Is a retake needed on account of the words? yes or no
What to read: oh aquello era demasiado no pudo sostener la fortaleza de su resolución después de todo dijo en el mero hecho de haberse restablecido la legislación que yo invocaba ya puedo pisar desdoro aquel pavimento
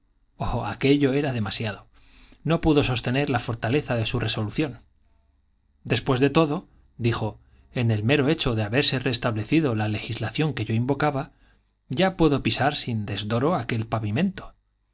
yes